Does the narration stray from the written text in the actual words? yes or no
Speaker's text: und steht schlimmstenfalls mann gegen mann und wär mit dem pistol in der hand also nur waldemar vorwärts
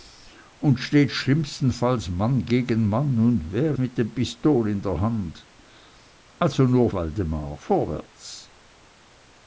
no